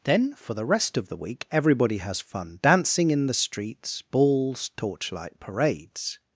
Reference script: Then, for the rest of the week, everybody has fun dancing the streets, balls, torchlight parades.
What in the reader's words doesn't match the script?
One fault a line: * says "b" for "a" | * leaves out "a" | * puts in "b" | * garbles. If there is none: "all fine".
* puts in "in"